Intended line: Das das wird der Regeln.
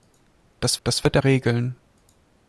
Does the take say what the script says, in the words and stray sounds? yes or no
yes